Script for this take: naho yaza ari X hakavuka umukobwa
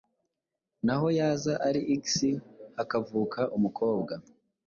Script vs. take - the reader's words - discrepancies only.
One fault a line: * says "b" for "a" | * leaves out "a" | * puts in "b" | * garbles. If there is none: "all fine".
all fine